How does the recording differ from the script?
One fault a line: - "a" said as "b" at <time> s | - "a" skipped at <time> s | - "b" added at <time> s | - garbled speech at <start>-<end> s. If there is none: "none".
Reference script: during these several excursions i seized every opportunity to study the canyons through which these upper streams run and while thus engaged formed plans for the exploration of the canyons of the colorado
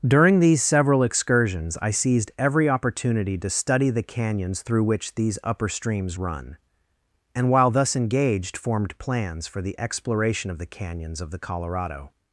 none